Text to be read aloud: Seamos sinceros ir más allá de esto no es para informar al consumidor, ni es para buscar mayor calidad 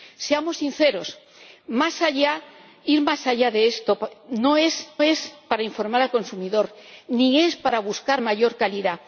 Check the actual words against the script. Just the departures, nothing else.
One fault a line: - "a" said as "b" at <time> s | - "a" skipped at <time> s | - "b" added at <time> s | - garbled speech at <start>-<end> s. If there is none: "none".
- "es" added at 5.0 s